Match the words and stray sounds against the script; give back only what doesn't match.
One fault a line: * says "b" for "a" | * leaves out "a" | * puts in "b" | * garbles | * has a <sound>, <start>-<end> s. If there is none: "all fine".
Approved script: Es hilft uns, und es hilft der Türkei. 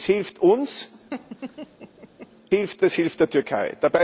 * has a laugh, 1.1-2.3 s
* says "hilft" for "und"